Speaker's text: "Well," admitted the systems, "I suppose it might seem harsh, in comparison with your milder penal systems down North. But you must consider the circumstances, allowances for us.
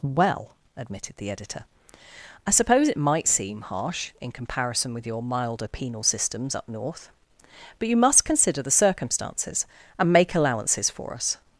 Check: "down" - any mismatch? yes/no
yes